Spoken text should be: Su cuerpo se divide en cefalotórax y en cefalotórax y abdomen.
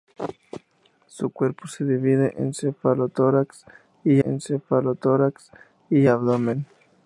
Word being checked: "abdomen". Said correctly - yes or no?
yes